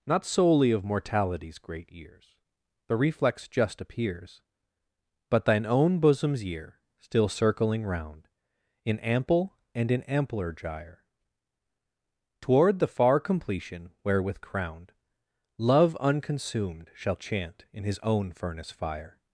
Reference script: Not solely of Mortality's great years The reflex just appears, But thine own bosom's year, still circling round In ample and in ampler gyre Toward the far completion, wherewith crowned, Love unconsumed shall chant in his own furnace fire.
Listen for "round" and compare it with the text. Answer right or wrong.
right